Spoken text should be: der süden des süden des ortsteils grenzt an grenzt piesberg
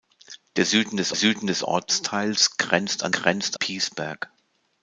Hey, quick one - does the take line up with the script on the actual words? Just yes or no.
yes